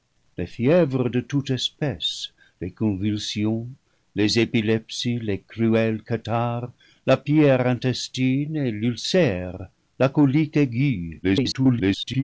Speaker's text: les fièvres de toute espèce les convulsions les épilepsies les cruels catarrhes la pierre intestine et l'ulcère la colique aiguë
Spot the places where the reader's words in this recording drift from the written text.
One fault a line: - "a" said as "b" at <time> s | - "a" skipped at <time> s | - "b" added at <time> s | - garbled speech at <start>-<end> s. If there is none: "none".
- garbled speech at 11.2-12.2 s